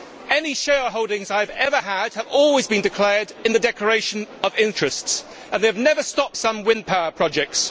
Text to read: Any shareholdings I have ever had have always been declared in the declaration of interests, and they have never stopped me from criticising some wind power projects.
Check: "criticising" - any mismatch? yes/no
yes